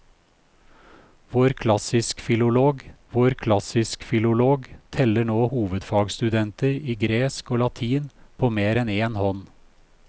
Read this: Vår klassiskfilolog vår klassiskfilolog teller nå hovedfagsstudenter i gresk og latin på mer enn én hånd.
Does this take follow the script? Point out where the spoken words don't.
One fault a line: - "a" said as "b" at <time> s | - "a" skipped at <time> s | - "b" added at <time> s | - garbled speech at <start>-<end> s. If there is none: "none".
none